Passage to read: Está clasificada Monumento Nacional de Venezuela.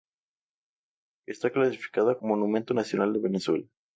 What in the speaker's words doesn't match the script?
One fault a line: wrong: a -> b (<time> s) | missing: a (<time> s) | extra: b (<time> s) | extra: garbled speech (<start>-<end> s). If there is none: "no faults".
no faults